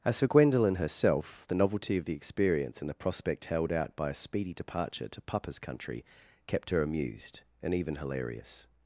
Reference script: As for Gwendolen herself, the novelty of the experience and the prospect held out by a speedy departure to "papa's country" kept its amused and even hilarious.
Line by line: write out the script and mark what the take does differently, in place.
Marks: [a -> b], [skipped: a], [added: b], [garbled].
As for Gwendolen herself, the novelty of the experience and the prospect held out by a speedy departure to "papa's country" kept [its -> her] amused and even hilarious.